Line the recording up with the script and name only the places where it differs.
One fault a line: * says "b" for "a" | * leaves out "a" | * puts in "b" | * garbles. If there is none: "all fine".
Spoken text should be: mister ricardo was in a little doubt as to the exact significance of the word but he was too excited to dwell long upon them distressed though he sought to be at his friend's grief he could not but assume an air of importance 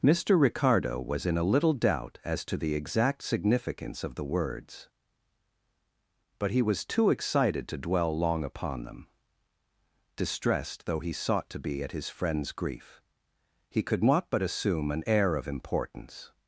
* says "words" for "word"